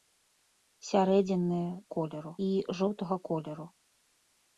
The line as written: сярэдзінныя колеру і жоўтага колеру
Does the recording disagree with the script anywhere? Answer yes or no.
no